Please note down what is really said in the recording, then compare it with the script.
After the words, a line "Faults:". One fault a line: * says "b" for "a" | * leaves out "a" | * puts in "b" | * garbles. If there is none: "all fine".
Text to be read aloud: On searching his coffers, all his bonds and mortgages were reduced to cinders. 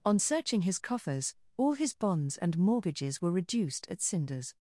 On searching his coffers, all his bonds and mortgages were reduced at cinders.
Faults:
* says "at" for "to"